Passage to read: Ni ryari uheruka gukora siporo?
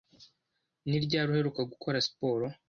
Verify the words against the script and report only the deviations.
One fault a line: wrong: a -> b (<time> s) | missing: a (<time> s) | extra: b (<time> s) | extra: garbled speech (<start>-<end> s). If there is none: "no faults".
no faults